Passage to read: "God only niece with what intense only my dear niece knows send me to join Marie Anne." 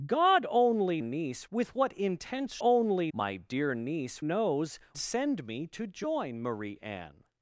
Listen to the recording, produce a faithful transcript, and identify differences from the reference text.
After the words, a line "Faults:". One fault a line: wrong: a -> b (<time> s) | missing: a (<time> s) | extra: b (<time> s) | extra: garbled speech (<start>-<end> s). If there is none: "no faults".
"God only niece with what intense only my dear niece knows send me to join Marie Anne."
Faults:
no faults